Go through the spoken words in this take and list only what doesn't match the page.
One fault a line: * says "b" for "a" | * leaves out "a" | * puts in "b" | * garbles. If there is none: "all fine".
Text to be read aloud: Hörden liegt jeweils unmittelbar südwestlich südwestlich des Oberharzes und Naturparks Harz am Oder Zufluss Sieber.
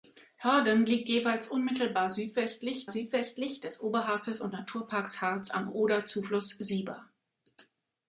all fine